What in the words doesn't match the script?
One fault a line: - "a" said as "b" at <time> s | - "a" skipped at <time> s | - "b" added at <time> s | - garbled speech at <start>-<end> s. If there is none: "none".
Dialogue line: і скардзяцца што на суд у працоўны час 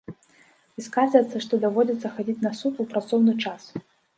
- "даводзіцца хадзіць" added at 1.6 s